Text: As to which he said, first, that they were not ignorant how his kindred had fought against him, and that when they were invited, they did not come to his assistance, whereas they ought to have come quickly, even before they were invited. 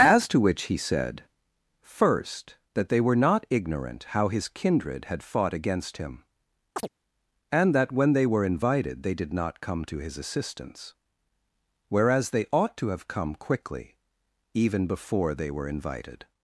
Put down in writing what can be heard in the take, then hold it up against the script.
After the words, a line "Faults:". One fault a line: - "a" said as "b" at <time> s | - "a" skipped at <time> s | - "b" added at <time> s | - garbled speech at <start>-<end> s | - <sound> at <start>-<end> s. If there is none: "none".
As to which he said, first, that they were not ignorant how his kindred had fought against him, and that when they were invited, they did not come to his assistance, whereas they ought to have come quickly, even before they were invited.
Faults:
- chirp at 6.8-6.9 s